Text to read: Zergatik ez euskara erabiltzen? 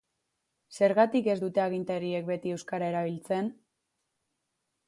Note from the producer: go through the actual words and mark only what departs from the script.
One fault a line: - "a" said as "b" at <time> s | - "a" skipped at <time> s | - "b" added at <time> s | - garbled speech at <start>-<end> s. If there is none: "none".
- "dute agintariek beti" added at 1.4 s